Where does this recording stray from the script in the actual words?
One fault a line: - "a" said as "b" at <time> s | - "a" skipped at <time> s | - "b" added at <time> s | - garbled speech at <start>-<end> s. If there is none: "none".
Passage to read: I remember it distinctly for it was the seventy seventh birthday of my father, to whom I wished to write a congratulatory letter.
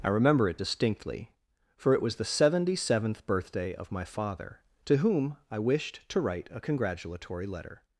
none